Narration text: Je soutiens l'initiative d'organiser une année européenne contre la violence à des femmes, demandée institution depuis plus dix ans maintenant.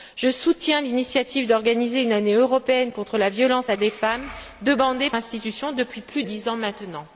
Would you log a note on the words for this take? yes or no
no